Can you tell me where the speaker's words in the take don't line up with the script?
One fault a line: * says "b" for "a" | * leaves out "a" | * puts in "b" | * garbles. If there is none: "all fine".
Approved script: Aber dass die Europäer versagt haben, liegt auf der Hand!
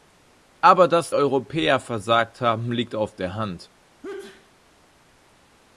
* leaves out "die"